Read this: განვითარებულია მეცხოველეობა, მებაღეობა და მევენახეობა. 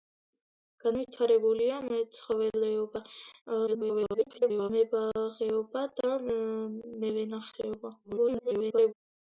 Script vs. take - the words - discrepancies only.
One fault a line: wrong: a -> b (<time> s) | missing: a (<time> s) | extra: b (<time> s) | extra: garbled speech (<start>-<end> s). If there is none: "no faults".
extra: garbled speech (3.7-4.7 s)
extra: garbled speech (8.0-8.9 s)